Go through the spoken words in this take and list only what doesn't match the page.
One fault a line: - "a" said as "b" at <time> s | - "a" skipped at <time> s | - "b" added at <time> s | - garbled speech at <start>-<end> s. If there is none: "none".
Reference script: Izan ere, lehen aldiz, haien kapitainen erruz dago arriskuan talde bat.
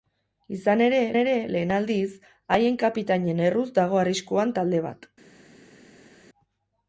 - "ere" added at 1.2 s